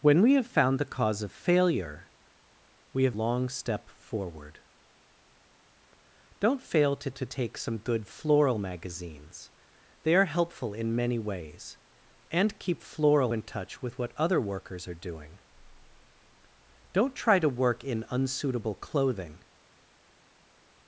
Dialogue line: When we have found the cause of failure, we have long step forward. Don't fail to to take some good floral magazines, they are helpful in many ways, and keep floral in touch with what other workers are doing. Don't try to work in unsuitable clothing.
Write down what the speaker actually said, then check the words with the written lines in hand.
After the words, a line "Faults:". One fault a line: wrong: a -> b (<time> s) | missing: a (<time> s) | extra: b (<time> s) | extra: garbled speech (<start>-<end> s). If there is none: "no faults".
When we have found the cause of failure, we have long step forward. Don't fail to to take some good floral magazines, they are helpful in many ways, and keep floral in touch with what other workers are doing. Don't try to work in unsuitable clothing.
Faults:
no faults